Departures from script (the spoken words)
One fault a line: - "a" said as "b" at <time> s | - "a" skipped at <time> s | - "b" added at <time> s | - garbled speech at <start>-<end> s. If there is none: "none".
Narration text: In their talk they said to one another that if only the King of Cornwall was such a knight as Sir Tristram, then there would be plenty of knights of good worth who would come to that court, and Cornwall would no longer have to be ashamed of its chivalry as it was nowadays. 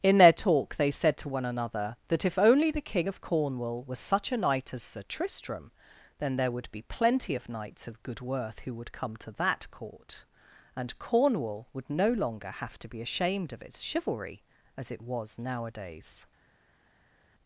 none